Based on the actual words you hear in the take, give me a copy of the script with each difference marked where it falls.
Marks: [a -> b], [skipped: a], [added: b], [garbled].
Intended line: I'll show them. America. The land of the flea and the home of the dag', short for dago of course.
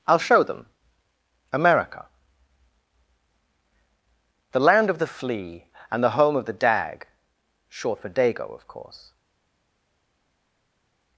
I'll show them. America. The land of the flea and the home of the dag', short for dago of course.